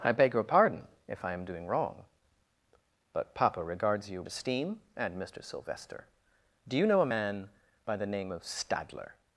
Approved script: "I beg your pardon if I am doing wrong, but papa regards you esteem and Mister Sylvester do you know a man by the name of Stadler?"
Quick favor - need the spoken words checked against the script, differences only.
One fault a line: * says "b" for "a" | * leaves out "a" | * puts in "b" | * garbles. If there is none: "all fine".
all fine